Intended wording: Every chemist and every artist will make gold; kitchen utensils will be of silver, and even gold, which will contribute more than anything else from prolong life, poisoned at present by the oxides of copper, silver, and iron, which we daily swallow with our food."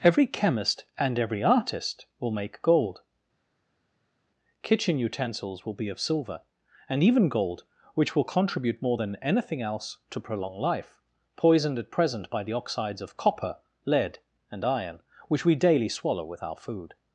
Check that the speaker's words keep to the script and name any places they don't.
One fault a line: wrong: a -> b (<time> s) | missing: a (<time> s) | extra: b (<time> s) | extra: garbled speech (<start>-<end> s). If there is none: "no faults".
wrong: from -> to (10.1 s)
wrong: silver -> lead (13.9 s)